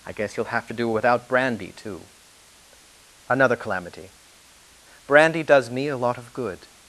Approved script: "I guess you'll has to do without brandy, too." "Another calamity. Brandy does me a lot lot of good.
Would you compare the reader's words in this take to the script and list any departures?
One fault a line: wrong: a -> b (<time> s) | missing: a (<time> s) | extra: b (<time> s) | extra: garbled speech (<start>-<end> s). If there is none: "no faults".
wrong: has -> have (0.5 s)
missing: lot (6.2 s)